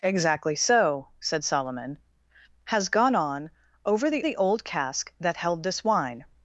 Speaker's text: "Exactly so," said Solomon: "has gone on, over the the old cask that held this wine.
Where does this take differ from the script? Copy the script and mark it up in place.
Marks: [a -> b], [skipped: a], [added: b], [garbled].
"Exactly so," said Solomon: "has gone on, over the the old cask that held this wine.